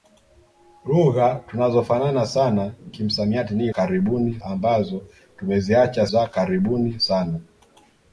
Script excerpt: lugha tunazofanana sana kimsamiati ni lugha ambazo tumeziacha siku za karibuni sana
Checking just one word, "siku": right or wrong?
wrong